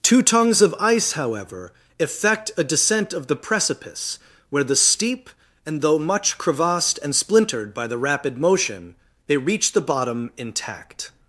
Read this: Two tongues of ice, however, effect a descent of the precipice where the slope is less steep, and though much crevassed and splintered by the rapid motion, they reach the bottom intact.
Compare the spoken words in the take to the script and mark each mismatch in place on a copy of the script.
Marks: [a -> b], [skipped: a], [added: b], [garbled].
Two tongues of ice, however, effect a descent of the precipice where the [skipped: slope is less] steep, and though much crevassed and splintered by the rapid motion, they reach the bottom intact.